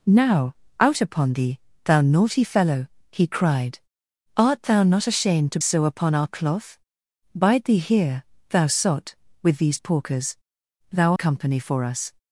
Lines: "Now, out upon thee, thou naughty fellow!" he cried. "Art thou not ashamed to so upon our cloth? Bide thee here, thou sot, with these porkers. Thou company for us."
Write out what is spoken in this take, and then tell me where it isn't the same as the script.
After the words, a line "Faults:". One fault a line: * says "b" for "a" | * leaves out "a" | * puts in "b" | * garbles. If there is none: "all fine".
"Now, out upon thee, thou naughty fellow!" he cried. "Art thou not ashamed to so upon our cloth? Bide thee here, thou sot, with these porkers. Thou company for us."
Faults:
all fine